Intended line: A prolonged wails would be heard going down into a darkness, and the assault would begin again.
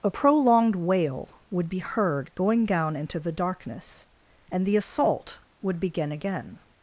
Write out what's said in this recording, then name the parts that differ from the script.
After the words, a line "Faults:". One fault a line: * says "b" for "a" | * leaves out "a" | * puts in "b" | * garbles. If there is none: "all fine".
A prolonged wail would be heard going down into the darkness, and the assault would begin again.
Faults:
* says "wail" for "wails"
* says "the" for "a"